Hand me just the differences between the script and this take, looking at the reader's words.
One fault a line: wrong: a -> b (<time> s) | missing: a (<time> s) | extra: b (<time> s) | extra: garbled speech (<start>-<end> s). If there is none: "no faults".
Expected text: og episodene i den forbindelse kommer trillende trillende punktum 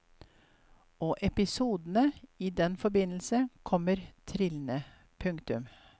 missing: trillende (4.8 s)